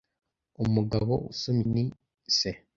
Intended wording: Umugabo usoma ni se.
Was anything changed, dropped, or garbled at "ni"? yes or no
no